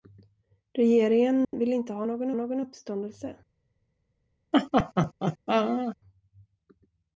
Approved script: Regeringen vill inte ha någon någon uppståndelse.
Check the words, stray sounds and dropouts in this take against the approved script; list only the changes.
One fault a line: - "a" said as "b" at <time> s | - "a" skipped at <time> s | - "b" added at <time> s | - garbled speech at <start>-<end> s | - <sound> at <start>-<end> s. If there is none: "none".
- dropout at 1.4-1.5 s
- laugh at 4.5-6.0 s